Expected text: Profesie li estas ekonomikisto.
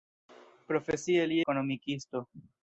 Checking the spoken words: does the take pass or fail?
fail